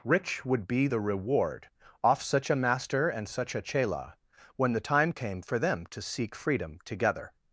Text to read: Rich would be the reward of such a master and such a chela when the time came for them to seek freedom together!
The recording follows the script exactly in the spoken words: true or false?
false